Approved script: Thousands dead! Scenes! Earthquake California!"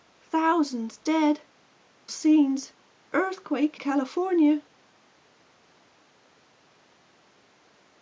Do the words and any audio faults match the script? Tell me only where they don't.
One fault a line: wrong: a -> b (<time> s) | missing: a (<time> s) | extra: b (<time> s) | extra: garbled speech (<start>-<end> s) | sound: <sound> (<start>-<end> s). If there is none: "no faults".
no faults